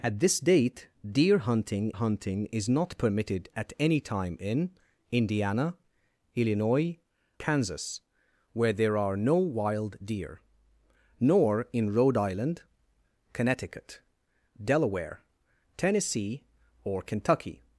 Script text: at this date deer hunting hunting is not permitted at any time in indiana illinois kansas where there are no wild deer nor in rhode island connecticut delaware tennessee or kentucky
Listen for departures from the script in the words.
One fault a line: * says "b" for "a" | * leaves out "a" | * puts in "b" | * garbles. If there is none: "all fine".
all fine